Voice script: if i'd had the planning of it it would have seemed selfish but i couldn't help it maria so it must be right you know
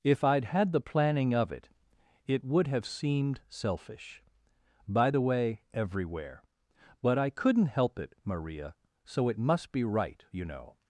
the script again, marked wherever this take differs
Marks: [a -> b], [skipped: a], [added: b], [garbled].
if i'd had the planning of it it would have seemed selfish [added: by the way everywhere] but i couldn't help it maria so it must be right you know